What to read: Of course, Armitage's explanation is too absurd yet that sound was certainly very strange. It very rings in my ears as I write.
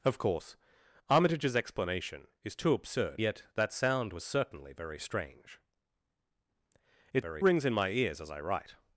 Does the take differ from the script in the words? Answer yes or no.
no